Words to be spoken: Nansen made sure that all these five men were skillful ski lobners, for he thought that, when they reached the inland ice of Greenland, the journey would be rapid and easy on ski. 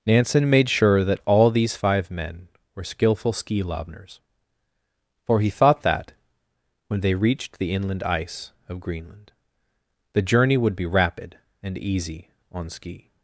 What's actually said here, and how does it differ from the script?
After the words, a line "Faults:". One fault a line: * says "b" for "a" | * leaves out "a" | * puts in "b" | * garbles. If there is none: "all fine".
Nansen made sure that all these five men were skillful ski lobners, for he thought that, when they reached the inland ice of Greenland, the journey would be rapid and easy on ski.
Faults:
all fine